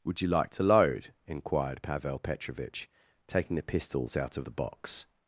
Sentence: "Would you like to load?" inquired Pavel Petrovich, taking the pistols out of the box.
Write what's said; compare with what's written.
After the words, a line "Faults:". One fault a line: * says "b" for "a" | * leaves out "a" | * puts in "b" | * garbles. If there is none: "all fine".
"Would you like to load?" inquired Pavel Petrovich, taking the pistols out of the box.
Faults:
all fine